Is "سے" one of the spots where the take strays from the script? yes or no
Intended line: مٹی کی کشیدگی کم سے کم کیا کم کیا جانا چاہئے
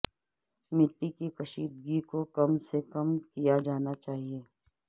no